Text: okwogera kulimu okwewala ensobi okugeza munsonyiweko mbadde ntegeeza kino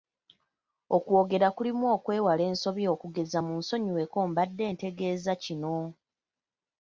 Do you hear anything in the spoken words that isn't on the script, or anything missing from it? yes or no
no